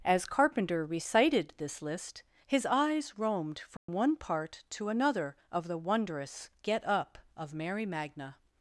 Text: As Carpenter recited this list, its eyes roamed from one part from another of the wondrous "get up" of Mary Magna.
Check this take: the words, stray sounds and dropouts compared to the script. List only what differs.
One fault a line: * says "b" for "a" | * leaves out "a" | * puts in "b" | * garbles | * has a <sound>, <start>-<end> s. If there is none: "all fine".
* says "his" for "its"
* has a dropout, 3.8-3.9 s
* says "to" for "from"